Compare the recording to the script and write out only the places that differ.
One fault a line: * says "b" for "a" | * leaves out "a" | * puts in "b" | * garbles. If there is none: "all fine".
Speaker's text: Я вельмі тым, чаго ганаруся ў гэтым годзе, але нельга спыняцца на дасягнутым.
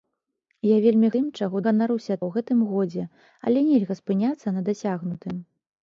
all fine